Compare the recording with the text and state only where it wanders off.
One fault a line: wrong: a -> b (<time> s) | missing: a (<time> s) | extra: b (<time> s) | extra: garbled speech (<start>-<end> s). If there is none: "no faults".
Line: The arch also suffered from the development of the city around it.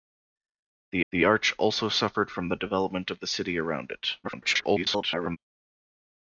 extra: the (1.1 s)
extra: garbled speech (4.2-5.4 s)